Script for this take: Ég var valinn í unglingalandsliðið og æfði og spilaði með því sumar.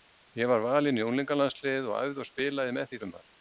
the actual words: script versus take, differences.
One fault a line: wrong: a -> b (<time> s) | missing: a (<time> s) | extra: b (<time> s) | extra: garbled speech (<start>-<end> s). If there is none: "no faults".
no faults